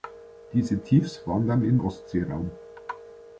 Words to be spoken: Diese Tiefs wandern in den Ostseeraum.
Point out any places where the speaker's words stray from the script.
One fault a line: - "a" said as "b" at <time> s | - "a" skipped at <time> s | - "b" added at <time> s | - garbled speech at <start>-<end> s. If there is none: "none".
- "den" skipped at 1.8 s